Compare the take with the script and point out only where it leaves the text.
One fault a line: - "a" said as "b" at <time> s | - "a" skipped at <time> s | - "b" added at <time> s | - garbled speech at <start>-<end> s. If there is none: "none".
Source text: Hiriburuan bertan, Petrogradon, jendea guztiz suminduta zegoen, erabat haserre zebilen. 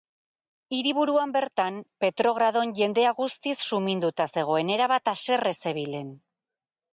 none